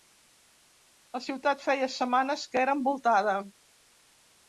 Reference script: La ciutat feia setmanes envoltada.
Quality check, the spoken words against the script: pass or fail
fail